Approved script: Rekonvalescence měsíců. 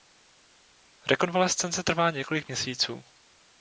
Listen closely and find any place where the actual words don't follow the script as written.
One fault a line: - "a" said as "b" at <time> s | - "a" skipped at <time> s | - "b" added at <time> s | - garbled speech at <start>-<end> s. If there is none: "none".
- "trvá několik" added at 1.8 s